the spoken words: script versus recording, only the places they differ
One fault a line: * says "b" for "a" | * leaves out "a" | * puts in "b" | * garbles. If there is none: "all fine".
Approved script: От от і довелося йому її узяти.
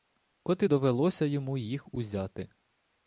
* leaves out "от"
* says "їх" for "її"